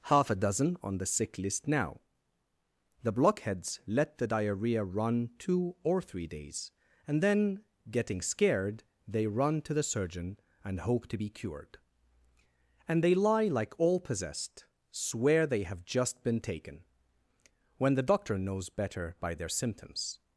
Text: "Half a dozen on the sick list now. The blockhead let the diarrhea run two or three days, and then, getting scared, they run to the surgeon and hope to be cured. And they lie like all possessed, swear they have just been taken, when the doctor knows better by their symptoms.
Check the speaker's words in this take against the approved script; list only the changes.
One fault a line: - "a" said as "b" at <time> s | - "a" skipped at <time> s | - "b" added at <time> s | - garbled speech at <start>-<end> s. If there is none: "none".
- "blockhead" said as "blockheads" at 3.1 s